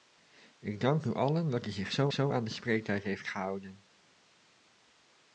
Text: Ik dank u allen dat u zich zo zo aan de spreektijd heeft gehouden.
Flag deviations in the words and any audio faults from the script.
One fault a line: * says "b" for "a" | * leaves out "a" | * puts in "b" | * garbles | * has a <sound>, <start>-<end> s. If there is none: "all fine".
all fine